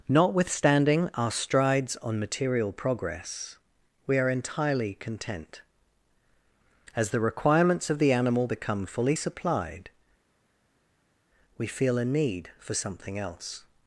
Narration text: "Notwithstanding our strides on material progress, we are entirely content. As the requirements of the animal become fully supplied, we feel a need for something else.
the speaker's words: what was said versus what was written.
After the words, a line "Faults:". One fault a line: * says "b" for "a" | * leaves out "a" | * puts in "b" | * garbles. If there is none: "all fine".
"Notwithstanding our strides on material progress, we are entirely content. As the requirements of the animal become fully supplied, we feel a need for something else.
Faults:
all fine